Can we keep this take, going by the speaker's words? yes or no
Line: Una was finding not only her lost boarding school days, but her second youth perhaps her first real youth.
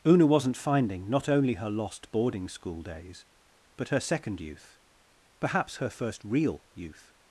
no